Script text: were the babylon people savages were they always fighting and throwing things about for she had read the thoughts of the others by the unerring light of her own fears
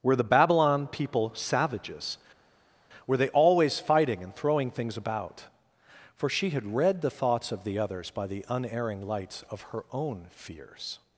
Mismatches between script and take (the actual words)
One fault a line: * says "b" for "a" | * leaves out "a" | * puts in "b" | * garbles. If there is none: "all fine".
* says "lights" for "light"